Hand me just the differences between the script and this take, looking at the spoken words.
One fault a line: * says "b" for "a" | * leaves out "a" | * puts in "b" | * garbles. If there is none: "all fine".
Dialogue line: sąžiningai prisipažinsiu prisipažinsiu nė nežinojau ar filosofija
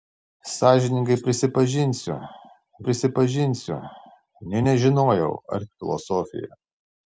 all fine